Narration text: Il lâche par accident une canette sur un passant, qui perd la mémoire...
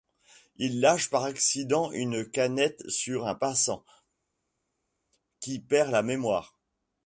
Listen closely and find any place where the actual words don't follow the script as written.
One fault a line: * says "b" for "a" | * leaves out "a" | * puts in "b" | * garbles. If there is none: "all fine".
all fine